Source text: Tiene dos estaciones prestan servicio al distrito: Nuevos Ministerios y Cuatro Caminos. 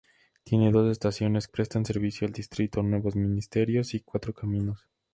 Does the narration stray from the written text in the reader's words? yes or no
no